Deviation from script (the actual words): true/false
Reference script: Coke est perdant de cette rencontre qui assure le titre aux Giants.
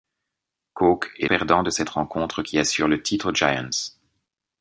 false